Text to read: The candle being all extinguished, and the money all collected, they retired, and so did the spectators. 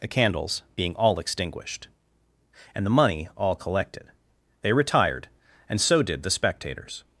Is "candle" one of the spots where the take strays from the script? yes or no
yes